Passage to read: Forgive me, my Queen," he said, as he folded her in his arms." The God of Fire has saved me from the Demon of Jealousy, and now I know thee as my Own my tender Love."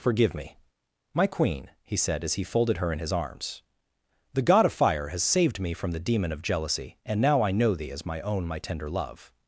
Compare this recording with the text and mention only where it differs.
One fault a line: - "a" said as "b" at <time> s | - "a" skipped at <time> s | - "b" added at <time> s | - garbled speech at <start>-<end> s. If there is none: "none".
none